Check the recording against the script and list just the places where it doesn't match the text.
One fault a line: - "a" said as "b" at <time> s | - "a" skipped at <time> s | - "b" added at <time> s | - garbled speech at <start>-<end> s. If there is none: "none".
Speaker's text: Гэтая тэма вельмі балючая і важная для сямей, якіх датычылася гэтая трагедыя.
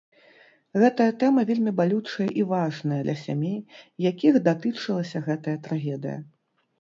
none